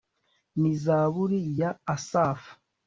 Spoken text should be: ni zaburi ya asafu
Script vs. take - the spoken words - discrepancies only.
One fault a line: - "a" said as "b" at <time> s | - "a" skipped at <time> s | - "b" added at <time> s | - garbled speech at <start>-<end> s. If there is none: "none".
none